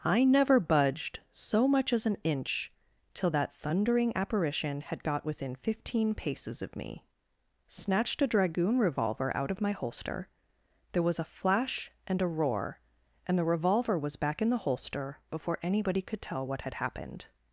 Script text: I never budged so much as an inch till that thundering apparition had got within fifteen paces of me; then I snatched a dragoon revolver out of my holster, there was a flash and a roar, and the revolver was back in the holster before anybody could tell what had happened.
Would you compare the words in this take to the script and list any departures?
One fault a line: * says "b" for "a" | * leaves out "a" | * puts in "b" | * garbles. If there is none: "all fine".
* leaves out "then I"